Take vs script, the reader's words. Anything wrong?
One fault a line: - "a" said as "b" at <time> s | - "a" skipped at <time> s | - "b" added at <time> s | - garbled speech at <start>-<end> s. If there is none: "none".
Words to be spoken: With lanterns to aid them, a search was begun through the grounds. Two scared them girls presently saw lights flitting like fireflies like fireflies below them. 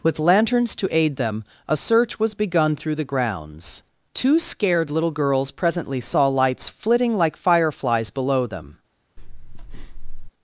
- "them" said as "little" at 4.9 s
- "like fireflies" skipped at 8.1 s